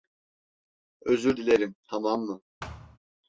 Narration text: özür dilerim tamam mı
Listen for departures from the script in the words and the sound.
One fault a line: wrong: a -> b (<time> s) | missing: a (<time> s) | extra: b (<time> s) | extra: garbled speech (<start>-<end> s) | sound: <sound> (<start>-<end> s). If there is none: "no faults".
sound: thud (2.6-3.0 s)